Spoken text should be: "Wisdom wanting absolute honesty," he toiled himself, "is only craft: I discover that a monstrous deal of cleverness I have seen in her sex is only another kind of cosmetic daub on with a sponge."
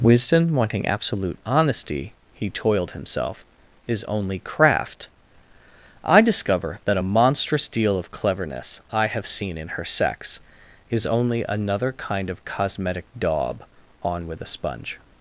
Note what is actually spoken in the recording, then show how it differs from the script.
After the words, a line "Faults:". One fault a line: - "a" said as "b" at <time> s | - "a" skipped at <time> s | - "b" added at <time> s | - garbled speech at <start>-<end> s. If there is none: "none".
"Wisdom wanting absolute honesty," he toiled himself, "is only craft: I discover that a monstrous deal of cleverness I have seen in her sex is only another kind of cosmetic daub on with a sponge."
Faults:
none